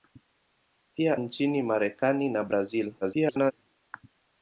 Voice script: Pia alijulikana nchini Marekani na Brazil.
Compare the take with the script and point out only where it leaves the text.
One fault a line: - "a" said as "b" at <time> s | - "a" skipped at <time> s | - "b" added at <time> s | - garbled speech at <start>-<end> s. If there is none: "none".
- "alijulikana" skipped at 1.2 s
- garbled speech at 3.0-3.5 s